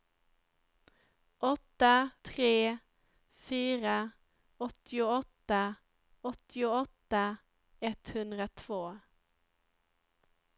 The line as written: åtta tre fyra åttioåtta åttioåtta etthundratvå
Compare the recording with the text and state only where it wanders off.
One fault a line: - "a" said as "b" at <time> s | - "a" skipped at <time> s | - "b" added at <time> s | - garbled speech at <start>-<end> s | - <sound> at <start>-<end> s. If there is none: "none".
none